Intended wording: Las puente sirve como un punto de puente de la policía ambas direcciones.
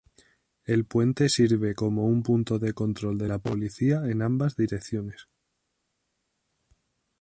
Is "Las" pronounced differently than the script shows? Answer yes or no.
yes